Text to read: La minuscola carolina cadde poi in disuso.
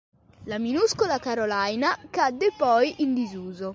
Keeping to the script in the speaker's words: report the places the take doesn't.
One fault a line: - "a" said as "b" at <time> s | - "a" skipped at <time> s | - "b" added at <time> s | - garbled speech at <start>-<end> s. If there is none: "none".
none